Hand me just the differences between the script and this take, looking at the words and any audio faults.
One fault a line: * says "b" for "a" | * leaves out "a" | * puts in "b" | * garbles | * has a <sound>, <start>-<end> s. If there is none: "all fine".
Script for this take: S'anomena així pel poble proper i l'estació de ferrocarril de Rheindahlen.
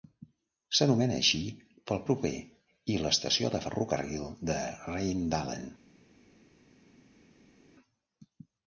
* leaves out "poble"